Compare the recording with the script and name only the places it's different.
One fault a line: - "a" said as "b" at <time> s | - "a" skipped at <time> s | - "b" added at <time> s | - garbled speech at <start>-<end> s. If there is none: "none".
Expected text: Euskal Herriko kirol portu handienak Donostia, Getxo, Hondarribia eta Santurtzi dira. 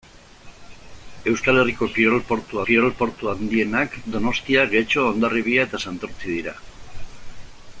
- "kirol portu" added at 2.7 s